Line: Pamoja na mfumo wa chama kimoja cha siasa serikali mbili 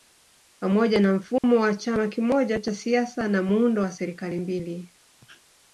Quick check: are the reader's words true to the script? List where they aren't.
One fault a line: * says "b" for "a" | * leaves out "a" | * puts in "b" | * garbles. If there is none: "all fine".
* puts in "na muundo wa"